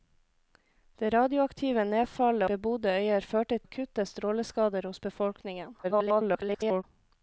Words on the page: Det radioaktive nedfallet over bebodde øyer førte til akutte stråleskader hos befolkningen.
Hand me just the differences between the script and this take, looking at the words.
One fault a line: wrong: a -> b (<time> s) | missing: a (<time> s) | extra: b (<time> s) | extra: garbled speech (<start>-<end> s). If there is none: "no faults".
missing: over (2.5 s)
missing: til (3.6 s)
extra: garbled speech (5.8-6.8 s)